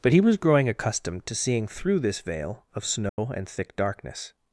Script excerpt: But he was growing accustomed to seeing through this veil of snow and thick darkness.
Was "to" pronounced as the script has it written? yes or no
yes